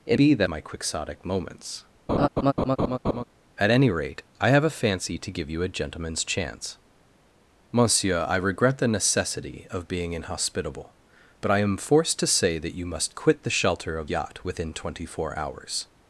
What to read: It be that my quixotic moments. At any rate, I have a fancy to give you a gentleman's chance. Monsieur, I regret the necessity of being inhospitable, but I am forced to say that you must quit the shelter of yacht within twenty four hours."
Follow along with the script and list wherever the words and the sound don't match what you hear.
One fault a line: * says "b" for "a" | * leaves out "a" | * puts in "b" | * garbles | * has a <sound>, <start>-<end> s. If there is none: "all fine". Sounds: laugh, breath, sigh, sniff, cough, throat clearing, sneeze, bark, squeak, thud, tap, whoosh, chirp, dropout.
* has a laugh, 2.1-3.2 s